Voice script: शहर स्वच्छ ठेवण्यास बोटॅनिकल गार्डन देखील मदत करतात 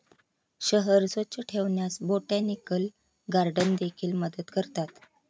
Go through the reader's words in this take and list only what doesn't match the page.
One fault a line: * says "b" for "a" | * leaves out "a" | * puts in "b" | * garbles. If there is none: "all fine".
all fine